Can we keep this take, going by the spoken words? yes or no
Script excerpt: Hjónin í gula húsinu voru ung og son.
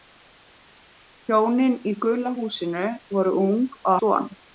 yes